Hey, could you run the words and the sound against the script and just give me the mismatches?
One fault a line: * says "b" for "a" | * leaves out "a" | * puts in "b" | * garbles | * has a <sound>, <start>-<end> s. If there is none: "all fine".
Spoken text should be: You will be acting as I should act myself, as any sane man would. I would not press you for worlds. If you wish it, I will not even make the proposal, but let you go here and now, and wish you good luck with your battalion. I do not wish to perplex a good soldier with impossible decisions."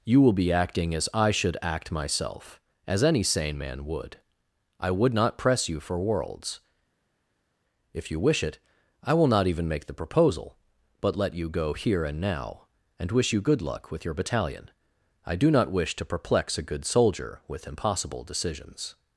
all fine